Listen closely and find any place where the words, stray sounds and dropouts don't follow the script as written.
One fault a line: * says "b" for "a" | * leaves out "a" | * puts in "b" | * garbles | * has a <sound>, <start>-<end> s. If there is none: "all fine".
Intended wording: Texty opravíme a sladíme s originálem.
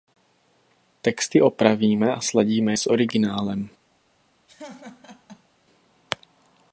* has a laugh, 4.5-5.5 s